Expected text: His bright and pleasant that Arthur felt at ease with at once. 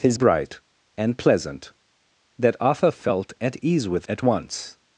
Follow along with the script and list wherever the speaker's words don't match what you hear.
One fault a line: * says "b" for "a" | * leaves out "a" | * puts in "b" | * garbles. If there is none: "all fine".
all fine